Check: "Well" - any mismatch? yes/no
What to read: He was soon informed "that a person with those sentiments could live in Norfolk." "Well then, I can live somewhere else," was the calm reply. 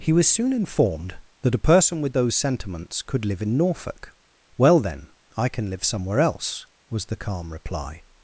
no